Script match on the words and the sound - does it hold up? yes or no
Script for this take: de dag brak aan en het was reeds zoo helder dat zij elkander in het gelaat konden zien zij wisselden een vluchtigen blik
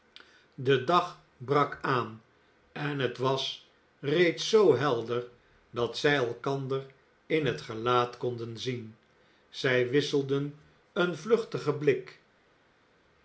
yes